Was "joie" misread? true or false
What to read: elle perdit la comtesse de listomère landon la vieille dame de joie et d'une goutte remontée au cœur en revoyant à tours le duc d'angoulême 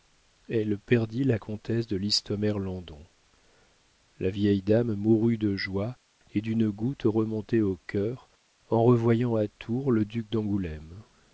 false